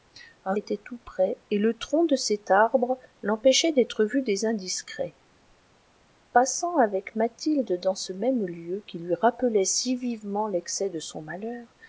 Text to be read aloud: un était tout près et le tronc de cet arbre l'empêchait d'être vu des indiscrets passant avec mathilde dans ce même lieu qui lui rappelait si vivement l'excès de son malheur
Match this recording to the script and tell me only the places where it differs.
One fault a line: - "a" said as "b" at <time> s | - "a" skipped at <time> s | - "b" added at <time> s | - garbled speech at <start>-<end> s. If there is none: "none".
none